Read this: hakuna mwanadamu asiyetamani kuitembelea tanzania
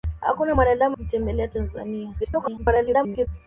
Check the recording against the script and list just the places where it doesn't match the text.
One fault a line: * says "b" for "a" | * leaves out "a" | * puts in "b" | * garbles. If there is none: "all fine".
* leaves out "asiyetamani"
* garbles